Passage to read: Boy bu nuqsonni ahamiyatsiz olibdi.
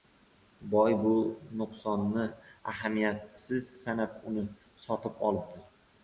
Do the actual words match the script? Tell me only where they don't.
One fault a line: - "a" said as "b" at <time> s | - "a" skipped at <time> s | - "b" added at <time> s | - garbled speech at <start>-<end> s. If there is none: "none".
- "sanab uni sotib" added at 3.8 s